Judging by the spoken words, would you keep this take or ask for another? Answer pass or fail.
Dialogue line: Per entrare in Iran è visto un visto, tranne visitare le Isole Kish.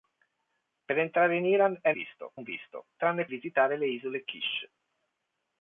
pass